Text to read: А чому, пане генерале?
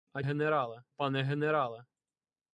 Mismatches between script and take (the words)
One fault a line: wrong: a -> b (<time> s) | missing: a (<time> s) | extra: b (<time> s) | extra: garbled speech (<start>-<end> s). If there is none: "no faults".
wrong: чому -> генерале (0.2 s)